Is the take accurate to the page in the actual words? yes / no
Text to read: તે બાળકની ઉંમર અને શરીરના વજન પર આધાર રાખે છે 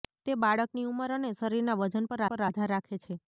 no